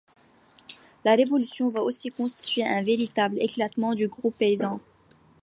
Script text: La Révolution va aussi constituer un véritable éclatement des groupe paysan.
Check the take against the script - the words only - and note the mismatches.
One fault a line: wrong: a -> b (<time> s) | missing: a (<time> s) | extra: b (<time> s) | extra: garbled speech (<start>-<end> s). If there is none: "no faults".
wrong: des -> du (3.9 s)